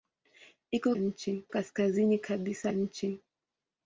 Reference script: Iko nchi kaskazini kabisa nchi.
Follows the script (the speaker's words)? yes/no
yes